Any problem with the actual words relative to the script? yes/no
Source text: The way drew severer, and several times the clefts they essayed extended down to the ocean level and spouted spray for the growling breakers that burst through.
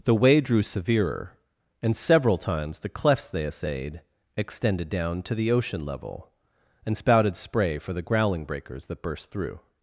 no